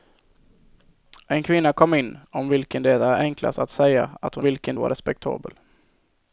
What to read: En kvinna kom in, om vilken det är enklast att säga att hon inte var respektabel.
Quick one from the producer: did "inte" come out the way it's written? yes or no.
no